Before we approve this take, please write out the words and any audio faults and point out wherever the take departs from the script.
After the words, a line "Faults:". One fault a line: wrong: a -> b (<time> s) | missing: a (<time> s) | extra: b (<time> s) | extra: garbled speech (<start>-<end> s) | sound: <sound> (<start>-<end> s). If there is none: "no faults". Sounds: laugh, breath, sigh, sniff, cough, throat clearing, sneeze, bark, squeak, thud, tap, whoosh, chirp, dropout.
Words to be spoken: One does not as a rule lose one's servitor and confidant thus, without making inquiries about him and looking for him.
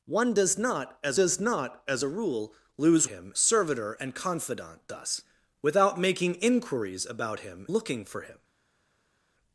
One does not as does not as a rule lose him servitor and confidant thus, without making inquiries about him looking for him.
Faults:
extra: does not as (1.1 s)
wrong: one's -> him (3.1 s)
missing: and (7.7 s)